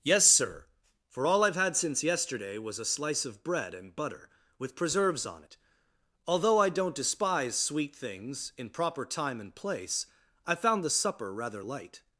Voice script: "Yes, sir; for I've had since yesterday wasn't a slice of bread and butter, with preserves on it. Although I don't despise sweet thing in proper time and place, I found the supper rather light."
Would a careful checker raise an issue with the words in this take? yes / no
yes